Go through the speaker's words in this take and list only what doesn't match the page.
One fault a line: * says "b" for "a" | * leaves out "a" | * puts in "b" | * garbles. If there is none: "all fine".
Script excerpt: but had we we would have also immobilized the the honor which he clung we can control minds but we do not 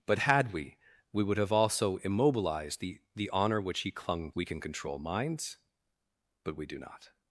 all fine